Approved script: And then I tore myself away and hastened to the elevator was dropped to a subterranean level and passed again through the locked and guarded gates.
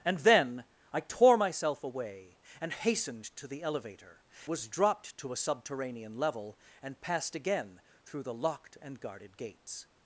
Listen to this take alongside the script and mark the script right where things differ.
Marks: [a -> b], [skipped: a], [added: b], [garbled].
And then I tore myself away and hastened to the elevator was dropped to a subterranean level and passed again through the locked and guarded gates.